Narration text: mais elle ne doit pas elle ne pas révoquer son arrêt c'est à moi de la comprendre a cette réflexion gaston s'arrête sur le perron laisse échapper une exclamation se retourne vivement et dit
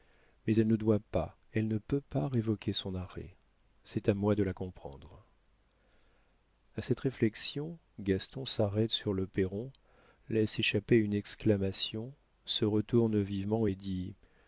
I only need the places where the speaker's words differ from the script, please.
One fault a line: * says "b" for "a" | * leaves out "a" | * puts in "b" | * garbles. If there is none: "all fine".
* puts in "peut"